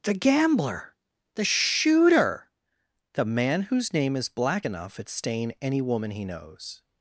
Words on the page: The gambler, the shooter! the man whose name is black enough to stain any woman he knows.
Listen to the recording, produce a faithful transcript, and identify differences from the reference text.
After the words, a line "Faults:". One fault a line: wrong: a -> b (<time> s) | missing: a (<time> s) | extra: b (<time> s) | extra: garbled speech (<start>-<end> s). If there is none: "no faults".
The gambler, the shooter! the man whose name is black enough at stain any woman he knows.
Faults:
wrong: to -> at (5.0 s)